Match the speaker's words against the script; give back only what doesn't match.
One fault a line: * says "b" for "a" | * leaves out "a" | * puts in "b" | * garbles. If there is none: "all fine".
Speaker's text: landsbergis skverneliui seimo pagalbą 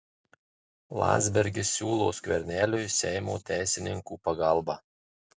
* puts in "siūlo"
* puts in "teisininkų"